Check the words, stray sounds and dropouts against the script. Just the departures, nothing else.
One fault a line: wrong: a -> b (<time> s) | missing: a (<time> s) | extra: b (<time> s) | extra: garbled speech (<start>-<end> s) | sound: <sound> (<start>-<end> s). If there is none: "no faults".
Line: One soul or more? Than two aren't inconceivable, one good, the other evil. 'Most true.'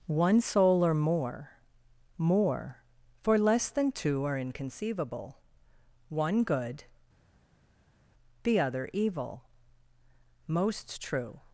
extra: More for less (2.2 s)
wrong: aren't -> are (4.2 s)